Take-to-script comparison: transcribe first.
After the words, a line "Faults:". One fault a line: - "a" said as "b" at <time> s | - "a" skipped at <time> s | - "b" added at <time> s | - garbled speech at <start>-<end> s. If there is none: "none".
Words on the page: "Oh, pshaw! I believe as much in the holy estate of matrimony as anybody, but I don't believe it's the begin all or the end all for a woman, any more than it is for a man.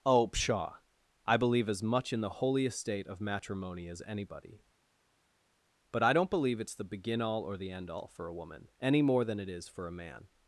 "Oh, pshaw! I believe as much in the holy estate of matrimony as anybody, but I don't believe it's the begin all or the end all for a woman, any more than it is for a man.
Faults:
none